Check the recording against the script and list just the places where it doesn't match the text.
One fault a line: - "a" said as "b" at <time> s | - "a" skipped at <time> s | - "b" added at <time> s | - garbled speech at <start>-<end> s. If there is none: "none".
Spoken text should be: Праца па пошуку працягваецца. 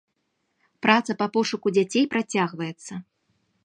- "дзяцей" added at 1.8 s